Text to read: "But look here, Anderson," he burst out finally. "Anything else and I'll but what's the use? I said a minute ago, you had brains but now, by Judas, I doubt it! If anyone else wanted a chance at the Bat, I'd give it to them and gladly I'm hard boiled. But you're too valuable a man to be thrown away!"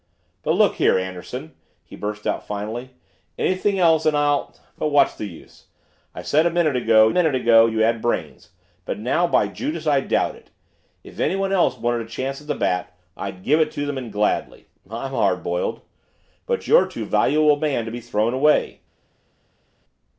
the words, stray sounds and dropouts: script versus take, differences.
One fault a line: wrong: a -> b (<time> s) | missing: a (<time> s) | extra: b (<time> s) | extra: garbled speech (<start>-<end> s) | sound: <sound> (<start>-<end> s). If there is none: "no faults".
extra: minute ago (7.1 s)